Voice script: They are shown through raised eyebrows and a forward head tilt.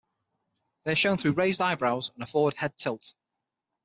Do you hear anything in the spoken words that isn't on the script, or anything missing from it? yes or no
no